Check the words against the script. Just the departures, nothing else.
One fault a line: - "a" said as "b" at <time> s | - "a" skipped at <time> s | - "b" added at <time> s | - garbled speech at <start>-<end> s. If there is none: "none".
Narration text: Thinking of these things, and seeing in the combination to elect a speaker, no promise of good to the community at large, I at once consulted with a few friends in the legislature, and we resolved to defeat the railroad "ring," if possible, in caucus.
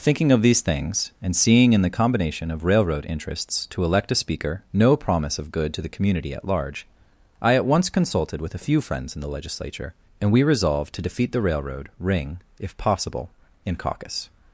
- "of railroad interests" added at 2.5 s